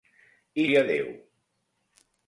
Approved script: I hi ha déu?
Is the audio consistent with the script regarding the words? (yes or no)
yes